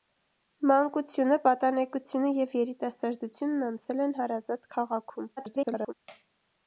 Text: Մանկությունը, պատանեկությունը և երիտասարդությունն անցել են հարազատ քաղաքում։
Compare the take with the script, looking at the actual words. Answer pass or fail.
fail